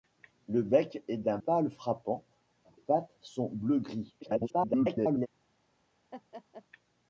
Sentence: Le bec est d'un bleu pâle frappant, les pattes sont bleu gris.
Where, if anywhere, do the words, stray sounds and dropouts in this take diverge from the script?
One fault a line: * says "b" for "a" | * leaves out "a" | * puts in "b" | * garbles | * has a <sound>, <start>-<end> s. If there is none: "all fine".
* leaves out "bleu"
* leaves out "les"
* garbles
* has a laugh, 6.1-6.6 s